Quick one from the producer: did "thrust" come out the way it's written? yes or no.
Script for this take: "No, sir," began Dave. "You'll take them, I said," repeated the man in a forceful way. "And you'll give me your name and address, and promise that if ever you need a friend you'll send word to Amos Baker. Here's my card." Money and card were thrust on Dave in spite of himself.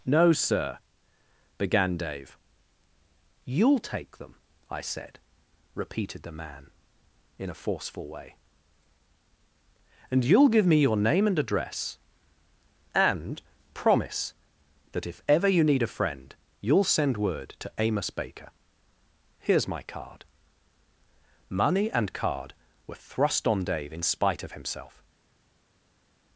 yes